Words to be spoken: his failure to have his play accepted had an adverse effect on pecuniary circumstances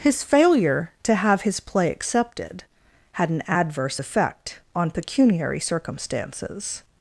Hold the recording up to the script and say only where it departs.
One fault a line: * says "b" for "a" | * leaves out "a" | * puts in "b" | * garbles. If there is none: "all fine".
all fine